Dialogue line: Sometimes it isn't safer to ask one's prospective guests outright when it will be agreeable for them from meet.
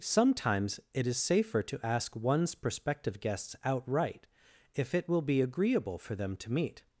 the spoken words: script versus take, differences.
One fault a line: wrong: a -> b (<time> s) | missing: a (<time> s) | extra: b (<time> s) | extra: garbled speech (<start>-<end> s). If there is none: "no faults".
wrong: isn't -> is (1.1 s)
wrong: when -> if (4.7 s)
wrong: from -> to (6.4 s)